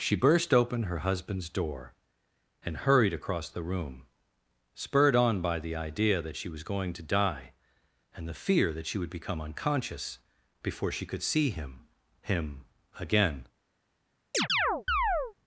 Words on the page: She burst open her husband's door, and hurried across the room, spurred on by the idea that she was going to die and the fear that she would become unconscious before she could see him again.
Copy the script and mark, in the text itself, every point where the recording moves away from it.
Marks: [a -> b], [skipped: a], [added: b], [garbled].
She burst open her husband's door, and hurried across the room, spurred on by the idea that she was going to die and the fear that she would become unconscious before she could see him [added: him] again.